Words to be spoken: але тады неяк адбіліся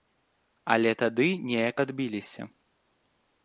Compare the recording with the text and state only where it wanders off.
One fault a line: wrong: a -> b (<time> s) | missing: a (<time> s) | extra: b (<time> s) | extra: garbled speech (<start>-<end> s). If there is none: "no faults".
no faults